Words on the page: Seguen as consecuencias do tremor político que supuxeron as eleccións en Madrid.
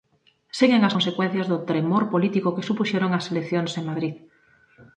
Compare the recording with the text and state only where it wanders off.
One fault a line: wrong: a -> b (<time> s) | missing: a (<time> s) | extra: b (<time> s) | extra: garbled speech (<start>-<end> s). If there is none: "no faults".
no faults